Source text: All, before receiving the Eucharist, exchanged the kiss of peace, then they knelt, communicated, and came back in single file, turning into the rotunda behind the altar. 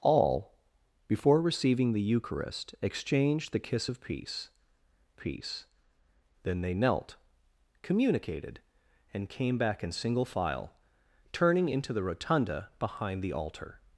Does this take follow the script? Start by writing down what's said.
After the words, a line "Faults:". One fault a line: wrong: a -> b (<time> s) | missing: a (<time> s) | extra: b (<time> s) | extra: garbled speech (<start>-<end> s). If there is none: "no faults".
All, before receiving the Eucharist, exchanged the kiss of peace peace, then they knelt, communicated, and came back in single file, turning into the rotunda behind the altar.
Faults:
extra: peace (5.1 s)